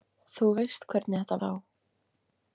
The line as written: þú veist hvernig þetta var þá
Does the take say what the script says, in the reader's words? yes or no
no